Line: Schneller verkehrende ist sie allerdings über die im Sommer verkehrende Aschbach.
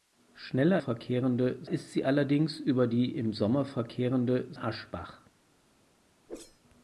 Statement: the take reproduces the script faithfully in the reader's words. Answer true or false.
true